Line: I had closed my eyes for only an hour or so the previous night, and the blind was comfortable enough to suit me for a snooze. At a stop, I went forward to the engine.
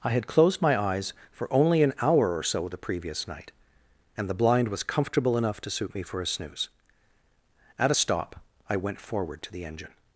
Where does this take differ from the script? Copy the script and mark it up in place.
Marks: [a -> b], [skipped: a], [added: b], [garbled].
I had closed my eyes for only an hour or so the previous night, and the blind was comfortable enough to suit me for a snooze. At a stop, I went forward to the engine.